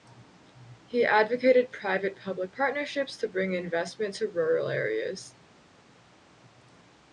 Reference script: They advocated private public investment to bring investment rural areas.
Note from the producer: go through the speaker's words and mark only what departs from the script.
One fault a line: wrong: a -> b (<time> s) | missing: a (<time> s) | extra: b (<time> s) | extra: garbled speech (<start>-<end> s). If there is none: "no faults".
wrong: They -> He (0.9 s)
wrong: investment -> partnerships (2.5 s)
extra: to (4.1 s)